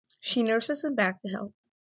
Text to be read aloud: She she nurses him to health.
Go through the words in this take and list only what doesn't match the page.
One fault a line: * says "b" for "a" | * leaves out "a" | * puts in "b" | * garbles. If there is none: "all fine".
* leaves out "she"
* puts in "back"